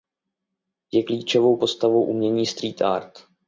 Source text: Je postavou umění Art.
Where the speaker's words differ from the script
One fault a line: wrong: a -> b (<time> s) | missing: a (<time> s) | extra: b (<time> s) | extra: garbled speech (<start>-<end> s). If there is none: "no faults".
extra: klíčovou (1.0 s)
extra: Street (2.5 s)